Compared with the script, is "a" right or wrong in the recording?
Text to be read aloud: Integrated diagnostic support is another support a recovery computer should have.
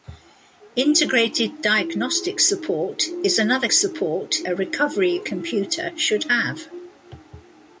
right